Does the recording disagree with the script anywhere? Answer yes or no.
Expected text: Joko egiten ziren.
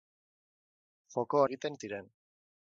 no